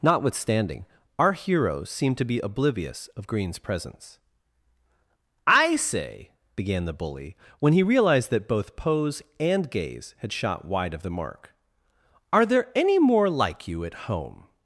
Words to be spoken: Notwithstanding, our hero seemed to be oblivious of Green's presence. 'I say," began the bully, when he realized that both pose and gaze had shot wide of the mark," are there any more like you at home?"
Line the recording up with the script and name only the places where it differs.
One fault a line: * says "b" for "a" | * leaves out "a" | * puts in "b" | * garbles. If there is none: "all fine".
* says "heroes seem" for "hero seemed"